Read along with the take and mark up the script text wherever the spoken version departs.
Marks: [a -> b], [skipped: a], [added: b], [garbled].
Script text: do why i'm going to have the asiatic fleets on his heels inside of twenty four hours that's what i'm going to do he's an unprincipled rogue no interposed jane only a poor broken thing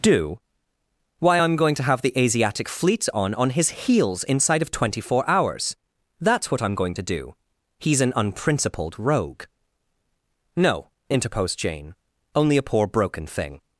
do why i'm going to have the asiatic fleets on [added: on] his heels inside of twenty four hours that's what i'm going to do he's an unprincipled rogue no interposed jane only a poor broken thing